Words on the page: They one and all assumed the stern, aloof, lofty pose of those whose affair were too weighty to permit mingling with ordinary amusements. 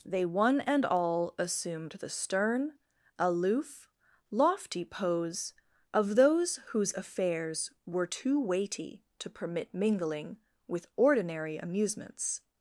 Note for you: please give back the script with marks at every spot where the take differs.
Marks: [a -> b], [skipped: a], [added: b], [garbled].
They one and all assumed the stern, aloof, lofty pose of those whose [affair -> affairs] were too weighty to permit mingling with ordinary amusements.